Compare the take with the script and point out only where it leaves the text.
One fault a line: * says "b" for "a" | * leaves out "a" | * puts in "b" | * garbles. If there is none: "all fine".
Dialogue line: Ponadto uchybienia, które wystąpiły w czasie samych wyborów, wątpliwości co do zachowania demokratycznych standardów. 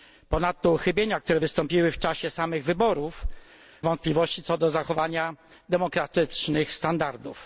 all fine